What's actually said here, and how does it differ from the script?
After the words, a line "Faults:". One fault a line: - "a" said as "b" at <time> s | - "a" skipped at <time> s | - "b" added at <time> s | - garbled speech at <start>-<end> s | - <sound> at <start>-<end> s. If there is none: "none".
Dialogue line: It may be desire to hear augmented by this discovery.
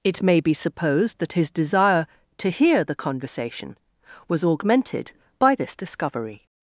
It may be supposed that his desire to hear the conversation was augmented by this discovery.
Faults:
- "supposed that his" added at 0.5 s
- "the conversation was" added at 2.8 s